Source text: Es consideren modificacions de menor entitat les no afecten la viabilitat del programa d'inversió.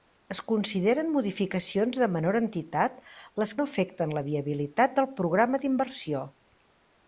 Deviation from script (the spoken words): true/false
false